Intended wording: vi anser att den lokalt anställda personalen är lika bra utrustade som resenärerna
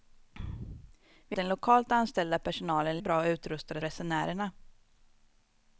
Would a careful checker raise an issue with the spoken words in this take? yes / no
yes